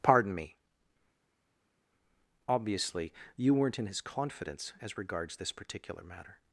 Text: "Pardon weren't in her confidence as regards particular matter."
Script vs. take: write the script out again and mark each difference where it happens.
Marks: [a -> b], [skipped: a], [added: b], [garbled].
"Pardon [added: me Obviously you] weren't in [her -> his] confidence as regards [added: this] particular matter."